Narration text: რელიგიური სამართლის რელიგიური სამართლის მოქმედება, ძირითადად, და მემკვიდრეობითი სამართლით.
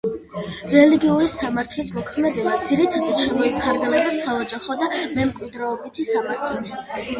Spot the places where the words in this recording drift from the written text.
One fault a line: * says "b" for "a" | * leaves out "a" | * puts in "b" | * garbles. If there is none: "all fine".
* says "მოქმედება ძირითადად შემოიფარგლება საოჯახო" for "რელიგიური სამართლის მოქმედება ძირითადად"